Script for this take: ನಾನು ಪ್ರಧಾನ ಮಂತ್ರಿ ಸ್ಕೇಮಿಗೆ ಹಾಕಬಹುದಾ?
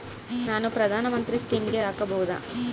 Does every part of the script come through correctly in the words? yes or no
yes